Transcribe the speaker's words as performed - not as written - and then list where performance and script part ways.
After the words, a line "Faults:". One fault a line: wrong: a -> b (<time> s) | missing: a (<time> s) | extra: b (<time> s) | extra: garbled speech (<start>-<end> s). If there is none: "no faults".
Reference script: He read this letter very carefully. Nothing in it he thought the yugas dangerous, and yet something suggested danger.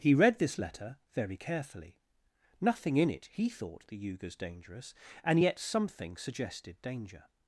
He read this letter very carefully. Nothing in it he thought the yugas dangerous, and yet something suggested danger.
Faults:
no faults